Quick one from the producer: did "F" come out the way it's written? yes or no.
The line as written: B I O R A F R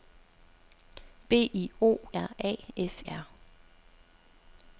yes